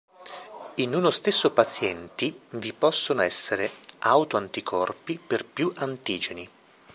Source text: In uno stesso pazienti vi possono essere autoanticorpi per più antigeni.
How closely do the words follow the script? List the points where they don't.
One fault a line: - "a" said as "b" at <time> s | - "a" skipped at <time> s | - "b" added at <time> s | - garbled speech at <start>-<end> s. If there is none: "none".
none